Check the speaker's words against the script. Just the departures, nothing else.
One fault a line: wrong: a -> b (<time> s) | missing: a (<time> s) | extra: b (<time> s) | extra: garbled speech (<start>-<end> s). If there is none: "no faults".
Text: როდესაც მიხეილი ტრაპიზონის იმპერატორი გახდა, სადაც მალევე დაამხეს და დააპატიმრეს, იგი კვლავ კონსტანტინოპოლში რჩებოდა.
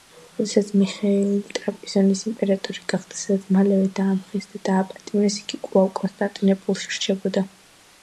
no faults